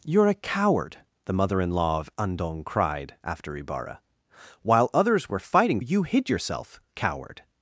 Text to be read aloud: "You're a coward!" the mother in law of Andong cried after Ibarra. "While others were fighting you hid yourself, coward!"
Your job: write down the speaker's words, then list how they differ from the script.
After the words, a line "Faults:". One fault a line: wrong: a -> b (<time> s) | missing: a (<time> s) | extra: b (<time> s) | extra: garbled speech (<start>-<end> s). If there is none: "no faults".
"You're a coward!" the mother in law of Andong cried after Ibarra. "While others were fighting you hid yourself, coward!"
Faults:
no faults